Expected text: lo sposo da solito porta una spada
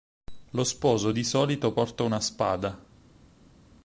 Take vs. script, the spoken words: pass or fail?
fail